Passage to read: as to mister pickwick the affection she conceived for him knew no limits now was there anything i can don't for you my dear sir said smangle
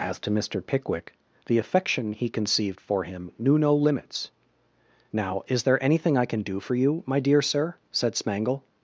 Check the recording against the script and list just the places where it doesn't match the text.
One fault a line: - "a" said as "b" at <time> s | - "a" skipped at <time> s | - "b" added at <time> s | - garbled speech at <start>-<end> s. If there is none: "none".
- "she" said as "he" at 2.1 s
- "was" said as "is" at 5.5 s
- "don't" said as "do" at 6.4 s